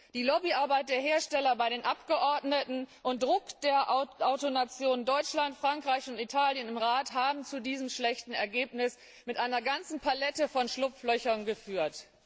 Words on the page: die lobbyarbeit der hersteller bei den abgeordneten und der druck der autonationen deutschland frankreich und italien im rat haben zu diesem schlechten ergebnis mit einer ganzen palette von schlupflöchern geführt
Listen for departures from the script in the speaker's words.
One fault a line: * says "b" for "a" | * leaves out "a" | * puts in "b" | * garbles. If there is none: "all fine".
* leaves out "der"